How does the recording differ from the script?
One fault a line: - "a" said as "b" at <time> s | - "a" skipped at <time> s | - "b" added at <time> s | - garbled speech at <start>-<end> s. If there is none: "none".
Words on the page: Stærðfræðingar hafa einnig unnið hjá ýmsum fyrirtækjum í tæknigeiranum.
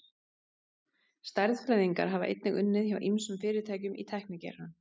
none